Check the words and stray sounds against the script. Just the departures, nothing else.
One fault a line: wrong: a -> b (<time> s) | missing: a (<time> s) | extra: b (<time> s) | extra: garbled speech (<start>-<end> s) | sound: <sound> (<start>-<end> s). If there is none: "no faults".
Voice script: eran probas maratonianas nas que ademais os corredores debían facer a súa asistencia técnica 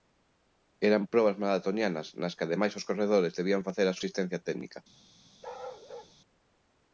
missing: súa (4.0 s)
sound: bark (5.4-6.1 s)